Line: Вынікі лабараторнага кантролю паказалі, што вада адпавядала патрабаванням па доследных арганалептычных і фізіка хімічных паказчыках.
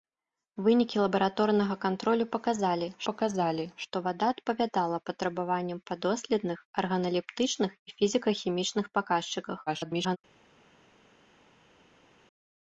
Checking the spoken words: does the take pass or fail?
fail